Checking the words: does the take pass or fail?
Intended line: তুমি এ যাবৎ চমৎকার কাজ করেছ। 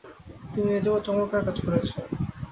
pass